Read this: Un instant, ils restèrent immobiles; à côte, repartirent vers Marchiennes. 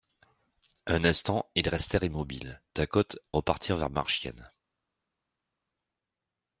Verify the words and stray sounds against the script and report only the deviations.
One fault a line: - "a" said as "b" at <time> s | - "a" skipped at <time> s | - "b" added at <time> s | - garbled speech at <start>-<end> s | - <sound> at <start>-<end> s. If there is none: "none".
none